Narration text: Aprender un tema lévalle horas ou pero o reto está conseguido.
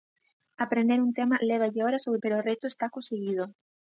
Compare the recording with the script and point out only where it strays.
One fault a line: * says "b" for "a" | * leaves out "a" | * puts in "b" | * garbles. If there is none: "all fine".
all fine